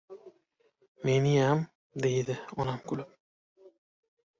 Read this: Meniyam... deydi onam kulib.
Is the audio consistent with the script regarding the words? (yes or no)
yes